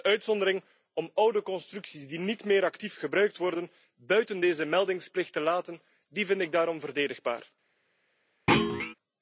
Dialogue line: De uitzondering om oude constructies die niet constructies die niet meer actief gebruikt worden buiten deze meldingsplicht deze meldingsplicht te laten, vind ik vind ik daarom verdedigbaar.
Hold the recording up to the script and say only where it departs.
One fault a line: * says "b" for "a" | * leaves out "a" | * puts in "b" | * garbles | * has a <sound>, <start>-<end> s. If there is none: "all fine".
* leaves out "constructies die niet"
* leaves out "deze meldingsplicht"
* leaves out "vind ik"
* has a thud, 8.5-8.9 s